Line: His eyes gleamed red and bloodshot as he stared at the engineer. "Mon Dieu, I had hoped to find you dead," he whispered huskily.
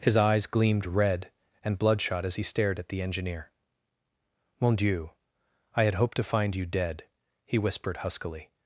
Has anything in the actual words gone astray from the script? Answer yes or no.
no